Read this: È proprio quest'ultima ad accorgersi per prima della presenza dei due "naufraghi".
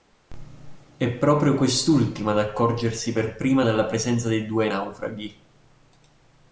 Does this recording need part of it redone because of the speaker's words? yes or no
no